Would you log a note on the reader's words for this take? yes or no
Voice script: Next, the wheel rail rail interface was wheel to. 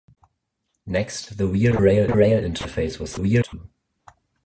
no